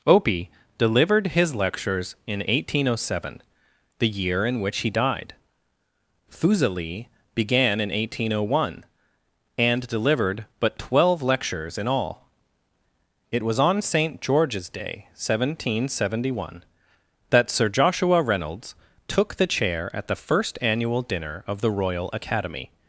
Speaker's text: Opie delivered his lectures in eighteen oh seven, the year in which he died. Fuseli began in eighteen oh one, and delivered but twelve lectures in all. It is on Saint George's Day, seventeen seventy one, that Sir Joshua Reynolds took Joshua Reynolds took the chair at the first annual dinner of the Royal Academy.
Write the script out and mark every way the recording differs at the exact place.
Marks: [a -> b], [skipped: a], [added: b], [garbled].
Opie delivered his lectures in eighteen oh seven, the year in which he died. Fuseli began in eighteen oh one, and delivered but twelve lectures in all. It [is -> was] on Saint George's Day, seventeen seventy one, that Sir Joshua Reynolds took [skipped: Joshua Reynolds took] the chair at the first annual dinner of the Royal Academy.